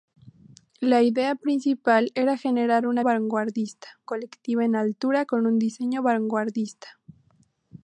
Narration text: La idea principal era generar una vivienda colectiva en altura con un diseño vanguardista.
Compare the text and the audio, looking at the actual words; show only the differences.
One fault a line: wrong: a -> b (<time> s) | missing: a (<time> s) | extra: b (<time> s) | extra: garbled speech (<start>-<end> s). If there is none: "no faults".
wrong: vivienda -> vanguardista (3.0 s)